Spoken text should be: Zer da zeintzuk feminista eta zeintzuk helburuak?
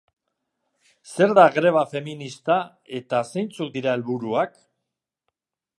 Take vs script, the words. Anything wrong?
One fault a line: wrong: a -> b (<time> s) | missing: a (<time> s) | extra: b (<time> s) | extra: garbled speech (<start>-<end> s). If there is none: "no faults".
wrong: zeintzuk -> greba (1.5 s)
extra: dira (3.8 s)